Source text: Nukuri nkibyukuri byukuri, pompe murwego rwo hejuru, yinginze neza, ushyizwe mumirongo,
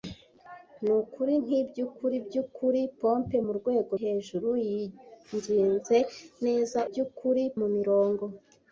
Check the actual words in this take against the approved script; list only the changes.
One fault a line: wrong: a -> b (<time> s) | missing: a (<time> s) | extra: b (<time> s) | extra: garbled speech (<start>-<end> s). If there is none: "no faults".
missing: rwo (3.9 s)
wrong: ushyizwe -> byukuri (6.9 s)